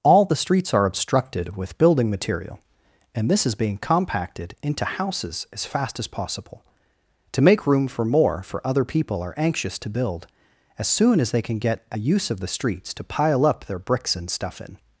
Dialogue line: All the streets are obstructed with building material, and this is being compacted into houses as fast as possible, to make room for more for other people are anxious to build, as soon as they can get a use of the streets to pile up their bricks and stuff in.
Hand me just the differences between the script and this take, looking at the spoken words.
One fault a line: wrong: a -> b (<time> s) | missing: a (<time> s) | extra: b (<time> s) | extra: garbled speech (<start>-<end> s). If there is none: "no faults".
no faults